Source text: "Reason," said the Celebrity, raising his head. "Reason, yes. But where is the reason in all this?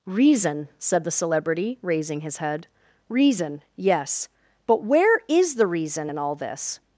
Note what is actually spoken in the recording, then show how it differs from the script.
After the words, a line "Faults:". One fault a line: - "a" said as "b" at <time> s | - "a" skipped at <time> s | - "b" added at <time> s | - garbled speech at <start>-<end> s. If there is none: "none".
"Reason," said the Celebrity, raising his head. "Reason, yes. But where is the reason in all this?
Faults:
none